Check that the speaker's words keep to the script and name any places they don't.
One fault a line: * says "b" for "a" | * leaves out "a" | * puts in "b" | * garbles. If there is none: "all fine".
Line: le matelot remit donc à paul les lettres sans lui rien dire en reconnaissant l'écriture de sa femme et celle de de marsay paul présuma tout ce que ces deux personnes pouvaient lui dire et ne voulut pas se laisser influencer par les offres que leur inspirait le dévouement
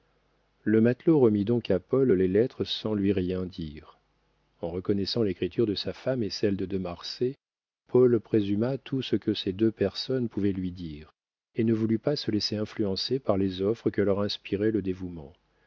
all fine